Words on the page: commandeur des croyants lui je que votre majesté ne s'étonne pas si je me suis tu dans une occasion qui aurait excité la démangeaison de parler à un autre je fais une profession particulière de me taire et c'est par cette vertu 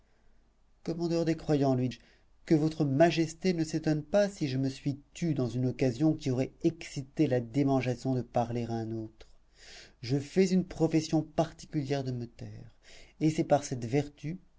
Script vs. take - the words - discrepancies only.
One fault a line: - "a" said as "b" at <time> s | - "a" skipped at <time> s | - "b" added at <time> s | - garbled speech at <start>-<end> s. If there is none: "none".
none